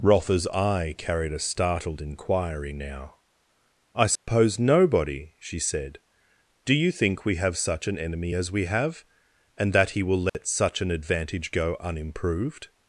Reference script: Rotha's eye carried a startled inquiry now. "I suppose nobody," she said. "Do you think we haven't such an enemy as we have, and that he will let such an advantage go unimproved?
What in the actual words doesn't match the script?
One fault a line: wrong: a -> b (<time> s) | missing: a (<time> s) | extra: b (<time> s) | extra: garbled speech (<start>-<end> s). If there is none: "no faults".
wrong: haven't -> have (7.3 s)